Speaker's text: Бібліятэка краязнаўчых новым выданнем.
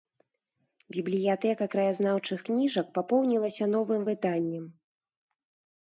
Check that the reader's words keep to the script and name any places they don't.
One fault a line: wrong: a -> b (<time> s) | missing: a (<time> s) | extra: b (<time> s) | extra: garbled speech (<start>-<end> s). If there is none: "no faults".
extra: кніжак папоўнілася (2.5 s)